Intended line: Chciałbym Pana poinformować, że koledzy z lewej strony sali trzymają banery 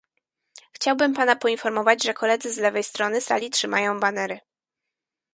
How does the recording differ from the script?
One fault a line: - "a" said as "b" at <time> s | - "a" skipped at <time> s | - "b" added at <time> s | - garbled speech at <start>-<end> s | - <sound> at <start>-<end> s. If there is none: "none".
none